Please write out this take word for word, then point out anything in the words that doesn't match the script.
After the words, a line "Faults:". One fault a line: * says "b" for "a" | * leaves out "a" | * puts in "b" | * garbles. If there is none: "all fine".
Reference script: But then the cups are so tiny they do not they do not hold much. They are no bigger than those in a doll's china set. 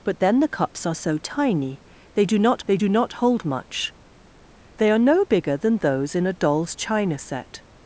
But then the cups are so tiny they do not they do not hold much. They are no bigger than those in a doll's china set.
Faults:
all fine